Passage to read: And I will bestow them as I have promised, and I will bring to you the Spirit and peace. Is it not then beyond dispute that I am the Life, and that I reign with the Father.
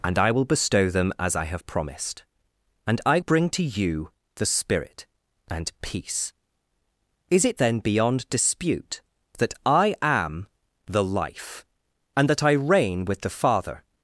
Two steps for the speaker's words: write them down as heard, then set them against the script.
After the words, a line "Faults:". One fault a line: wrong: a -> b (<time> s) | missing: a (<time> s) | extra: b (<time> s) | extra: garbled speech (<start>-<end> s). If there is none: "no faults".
And I will bestow them as I have promised, and I bring to you the Spirit and peace. Is it then beyond dispute that I am the Life, and that I reign with the Father.
Faults:
missing: will (3.2 s)
missing: not (7.6 s)